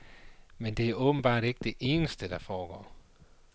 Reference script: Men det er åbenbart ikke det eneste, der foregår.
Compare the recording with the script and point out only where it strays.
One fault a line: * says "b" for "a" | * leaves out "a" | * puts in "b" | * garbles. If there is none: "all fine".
all fine